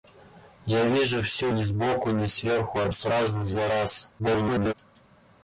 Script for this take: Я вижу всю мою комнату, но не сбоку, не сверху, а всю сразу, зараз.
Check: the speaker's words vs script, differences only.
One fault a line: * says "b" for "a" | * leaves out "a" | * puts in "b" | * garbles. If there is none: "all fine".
* leaves out "мою комнату но"
* leaves out "всю"
* garbles